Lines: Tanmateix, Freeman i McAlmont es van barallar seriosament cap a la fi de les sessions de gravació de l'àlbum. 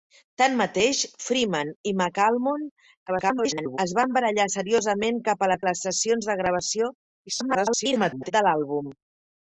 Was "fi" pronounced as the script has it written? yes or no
no